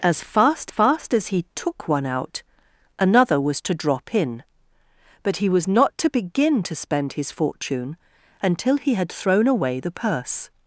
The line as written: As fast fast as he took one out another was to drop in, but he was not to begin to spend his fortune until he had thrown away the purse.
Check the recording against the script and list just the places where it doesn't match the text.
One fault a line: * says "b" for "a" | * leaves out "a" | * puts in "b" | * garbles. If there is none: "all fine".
all fine